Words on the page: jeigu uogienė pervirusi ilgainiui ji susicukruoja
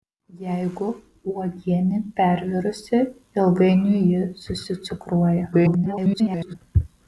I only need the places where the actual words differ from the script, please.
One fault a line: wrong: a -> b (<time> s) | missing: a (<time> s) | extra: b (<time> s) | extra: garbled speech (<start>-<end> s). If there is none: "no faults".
extra: garbled speech (5.5-6.6 s)